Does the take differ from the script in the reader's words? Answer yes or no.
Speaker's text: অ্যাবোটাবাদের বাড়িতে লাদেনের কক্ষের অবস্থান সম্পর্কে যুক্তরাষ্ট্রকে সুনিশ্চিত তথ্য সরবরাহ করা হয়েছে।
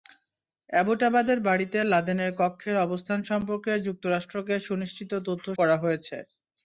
yes